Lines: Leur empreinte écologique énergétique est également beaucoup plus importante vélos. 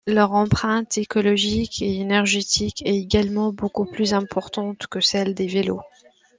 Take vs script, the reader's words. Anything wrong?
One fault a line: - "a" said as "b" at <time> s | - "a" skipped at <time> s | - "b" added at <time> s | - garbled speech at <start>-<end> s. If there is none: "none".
- "et" added at 1.8 s
- "que celle des" added at 4.9 s